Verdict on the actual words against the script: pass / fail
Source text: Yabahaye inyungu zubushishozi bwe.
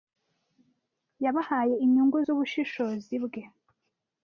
pass